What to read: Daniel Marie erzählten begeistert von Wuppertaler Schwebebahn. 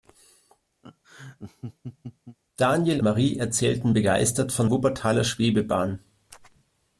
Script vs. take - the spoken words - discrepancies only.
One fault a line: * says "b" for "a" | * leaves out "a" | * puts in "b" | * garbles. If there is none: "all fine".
all fine